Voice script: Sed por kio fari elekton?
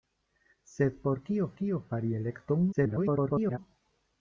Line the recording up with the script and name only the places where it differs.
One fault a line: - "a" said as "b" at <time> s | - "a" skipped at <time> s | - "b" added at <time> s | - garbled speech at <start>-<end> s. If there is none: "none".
- "kio" added at 1.6 s
- garbled speech at 2.7-3.6 s